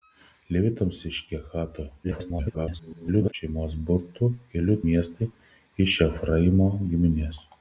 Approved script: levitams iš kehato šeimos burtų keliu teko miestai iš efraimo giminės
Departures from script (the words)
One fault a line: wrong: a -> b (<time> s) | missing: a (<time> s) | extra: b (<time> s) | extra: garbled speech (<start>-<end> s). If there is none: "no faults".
extra: garbled speech (2.0-3.3 s)
missing: teko (4.8 s)